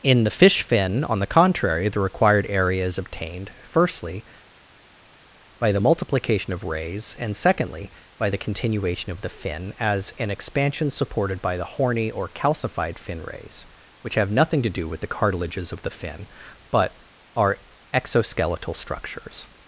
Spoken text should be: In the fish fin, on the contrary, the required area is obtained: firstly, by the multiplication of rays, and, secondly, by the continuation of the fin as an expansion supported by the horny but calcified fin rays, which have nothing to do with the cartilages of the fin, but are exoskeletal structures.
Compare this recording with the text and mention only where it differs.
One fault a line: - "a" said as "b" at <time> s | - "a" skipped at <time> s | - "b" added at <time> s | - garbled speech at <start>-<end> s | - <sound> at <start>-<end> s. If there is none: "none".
- "but" said as "or" at 12.1 s